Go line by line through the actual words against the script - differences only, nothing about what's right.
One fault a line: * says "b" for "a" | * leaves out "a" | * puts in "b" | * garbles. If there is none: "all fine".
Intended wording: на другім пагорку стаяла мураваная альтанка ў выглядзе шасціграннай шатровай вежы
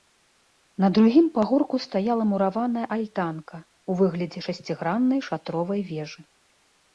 all fine